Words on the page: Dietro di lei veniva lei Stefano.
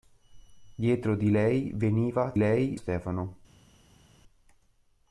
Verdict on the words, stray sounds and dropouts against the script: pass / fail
pass